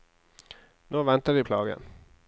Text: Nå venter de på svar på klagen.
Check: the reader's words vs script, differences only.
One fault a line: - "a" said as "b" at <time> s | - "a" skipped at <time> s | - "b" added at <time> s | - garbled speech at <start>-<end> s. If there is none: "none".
- "på svar på" skipped at 1.4 s